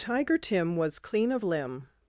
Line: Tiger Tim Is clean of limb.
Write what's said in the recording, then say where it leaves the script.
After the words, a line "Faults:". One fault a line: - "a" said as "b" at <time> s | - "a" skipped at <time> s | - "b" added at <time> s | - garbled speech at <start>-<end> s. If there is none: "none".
Tiger Tim Was clean of limb.
Faults:
- "Is" said as "Was" at 0.8 s